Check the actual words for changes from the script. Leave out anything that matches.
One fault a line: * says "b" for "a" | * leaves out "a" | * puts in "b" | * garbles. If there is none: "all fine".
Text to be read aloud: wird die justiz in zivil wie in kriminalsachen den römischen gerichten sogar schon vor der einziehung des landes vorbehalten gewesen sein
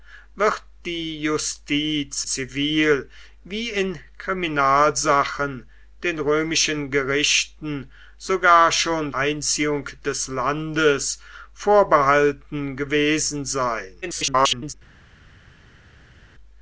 * leaves out "in"
* leaves out "vor der"
* garbles